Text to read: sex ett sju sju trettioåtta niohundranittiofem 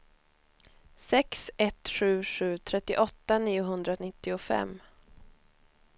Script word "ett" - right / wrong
right